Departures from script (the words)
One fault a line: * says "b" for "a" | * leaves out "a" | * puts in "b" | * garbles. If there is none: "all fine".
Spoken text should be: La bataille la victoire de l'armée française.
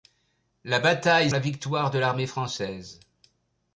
all fine